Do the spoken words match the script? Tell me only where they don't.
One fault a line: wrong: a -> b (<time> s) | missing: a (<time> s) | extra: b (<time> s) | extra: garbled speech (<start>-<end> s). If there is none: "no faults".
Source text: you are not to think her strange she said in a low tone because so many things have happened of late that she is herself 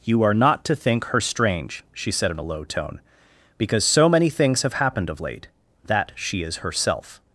no faults